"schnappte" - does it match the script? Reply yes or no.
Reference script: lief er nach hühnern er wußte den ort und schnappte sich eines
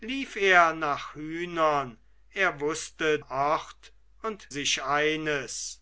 no